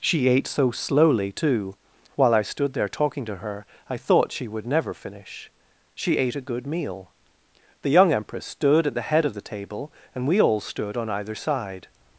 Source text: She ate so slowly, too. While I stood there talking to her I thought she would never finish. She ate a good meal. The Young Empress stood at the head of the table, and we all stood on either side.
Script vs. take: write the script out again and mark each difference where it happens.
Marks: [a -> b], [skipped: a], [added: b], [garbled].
She ate so slowly, too. While I stood there talking to her I thought she would never finish. She ate a good meal. The Young Empress stood at the head of the table, and we all stood on either side.